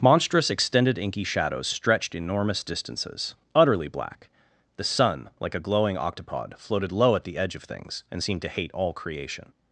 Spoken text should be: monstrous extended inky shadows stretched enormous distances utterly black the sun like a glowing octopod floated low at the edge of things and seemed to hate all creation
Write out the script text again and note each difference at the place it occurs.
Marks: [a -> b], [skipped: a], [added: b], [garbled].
monstrous extended inky shadows stretched enormous distances utterly black the sun like a glowing octopod floated low at the edge of things and seemed to hate all creation